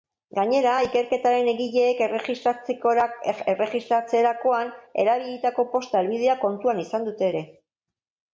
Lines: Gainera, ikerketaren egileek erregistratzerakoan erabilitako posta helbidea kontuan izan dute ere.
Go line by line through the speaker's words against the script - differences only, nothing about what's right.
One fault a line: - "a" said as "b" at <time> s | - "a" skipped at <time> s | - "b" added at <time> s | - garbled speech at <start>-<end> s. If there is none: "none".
none